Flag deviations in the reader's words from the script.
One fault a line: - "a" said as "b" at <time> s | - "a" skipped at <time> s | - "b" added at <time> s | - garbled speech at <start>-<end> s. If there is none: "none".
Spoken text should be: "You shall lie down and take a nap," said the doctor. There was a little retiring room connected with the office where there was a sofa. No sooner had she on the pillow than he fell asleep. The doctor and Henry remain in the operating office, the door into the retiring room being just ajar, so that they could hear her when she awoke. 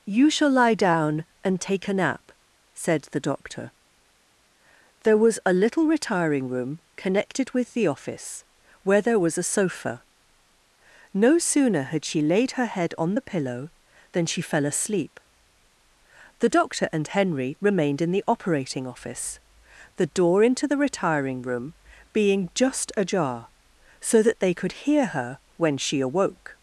- "laid her head" added at 12.2 s
- "he" said as "she" at 14.2 s
- "remain" said as "remained" at 17.6 s